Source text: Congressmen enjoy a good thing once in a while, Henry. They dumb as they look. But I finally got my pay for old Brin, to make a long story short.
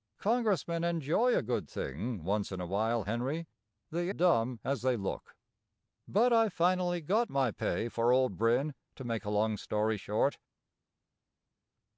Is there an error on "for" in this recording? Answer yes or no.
no